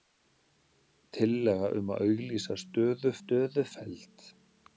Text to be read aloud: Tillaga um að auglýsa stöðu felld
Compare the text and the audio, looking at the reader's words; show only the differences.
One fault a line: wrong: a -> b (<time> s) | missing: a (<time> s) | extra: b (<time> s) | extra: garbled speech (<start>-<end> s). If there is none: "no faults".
extra: stöðu (3.2 s)